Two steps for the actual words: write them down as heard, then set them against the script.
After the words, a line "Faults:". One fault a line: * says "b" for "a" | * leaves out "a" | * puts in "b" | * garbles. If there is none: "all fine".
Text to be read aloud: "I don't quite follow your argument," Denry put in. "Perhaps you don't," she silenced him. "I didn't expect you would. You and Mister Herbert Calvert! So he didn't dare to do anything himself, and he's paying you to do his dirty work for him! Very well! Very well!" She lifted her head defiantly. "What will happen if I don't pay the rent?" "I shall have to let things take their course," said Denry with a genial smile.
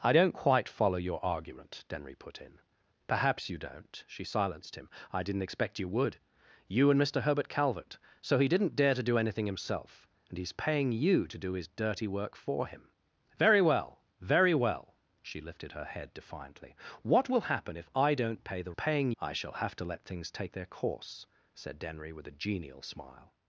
"I don't quite follow your argument," Denry put in. "Perhaps you don't," she silenced him. "I didn't expect you would. You and Mister Herbert Calvert! So he didn't dare to do anything himself, and he's paying you to do his dirty work for him! Very well! Very well!" She lifted her head defiantly. "What will happen if I don't pay the paying?" "I shall have to let things take their course," said Denry with a genial smile.
Faults:
* says "paying" for "rent"